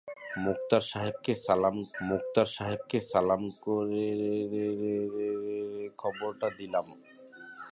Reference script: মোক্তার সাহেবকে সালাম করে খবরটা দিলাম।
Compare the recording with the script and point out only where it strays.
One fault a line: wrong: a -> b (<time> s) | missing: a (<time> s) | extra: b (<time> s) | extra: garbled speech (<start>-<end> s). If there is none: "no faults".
extra: মোক্তার সাহেবকে সালাম (2.0 s)